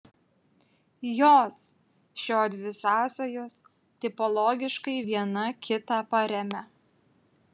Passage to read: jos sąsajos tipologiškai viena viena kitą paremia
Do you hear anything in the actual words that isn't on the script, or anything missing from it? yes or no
yes